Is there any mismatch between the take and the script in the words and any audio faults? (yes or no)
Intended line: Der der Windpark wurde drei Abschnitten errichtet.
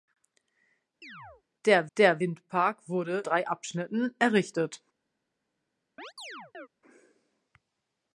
yes